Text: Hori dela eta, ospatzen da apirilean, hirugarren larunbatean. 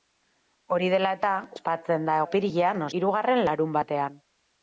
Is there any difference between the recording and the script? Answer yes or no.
no